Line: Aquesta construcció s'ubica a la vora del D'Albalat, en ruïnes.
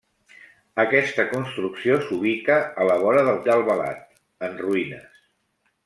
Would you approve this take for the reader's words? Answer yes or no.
yes